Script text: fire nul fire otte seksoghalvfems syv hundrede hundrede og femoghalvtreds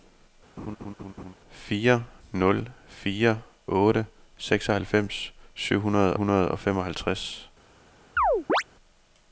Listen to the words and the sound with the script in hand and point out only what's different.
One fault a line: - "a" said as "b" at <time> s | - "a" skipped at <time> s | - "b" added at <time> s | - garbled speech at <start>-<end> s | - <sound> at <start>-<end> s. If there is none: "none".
- laugh at 0.6-1.3 s
- chirp at 8.2-8.6 s